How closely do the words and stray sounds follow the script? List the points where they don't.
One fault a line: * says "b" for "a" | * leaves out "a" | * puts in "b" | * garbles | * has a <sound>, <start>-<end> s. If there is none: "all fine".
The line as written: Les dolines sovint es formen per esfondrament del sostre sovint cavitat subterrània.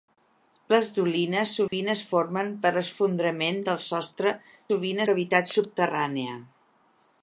* has a dropout, 1.7-1.7 s